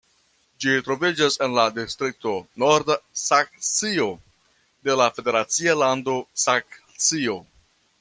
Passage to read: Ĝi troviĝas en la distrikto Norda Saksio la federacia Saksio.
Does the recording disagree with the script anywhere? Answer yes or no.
yes